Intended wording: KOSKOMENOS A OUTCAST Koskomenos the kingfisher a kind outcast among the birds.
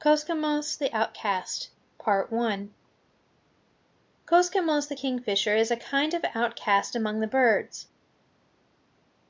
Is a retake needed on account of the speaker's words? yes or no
yes